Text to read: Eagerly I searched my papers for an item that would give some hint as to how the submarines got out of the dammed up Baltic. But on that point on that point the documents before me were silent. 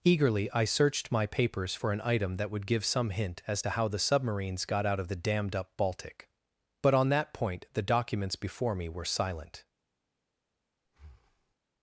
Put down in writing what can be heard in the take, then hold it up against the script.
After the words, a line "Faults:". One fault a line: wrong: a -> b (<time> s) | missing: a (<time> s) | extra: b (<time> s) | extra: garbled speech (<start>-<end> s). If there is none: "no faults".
Eagerly I searched my papers for an item that would give some hint as to how the submarines got out of the dammed up Baltic. But on that point the documents before me were silent.
Faults:
missing: on that point (7.6 s)